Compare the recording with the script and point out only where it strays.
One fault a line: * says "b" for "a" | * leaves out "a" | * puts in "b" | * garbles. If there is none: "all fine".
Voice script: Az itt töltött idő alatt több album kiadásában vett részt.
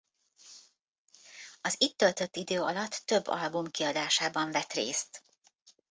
all fine